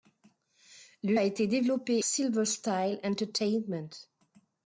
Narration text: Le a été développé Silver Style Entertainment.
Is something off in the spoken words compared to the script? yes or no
no